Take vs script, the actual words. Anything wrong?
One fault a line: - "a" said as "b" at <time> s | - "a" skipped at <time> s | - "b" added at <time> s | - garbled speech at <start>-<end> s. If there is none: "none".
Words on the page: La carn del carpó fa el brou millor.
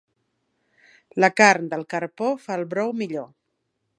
none